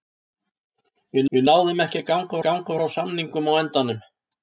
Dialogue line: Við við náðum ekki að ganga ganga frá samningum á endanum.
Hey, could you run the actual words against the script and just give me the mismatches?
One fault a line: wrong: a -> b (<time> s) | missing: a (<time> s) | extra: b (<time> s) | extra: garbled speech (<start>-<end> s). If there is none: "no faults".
no faults